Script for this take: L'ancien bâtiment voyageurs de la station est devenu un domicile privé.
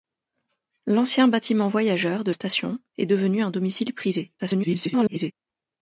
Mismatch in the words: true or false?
true